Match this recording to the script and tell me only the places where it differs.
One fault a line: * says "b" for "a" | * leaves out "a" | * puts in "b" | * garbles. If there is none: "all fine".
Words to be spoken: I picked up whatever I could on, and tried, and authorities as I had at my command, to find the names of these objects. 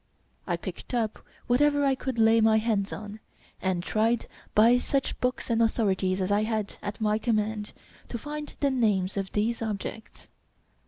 * puts in "lay my hands"
* puts in "by such books"